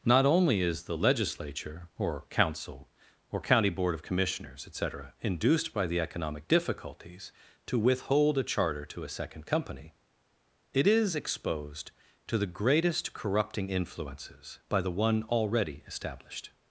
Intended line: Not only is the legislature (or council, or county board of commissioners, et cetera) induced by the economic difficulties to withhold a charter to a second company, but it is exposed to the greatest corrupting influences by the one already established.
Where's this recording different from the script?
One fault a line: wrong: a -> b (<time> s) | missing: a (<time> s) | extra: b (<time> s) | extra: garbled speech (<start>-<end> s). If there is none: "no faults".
missing: but (9.9 s)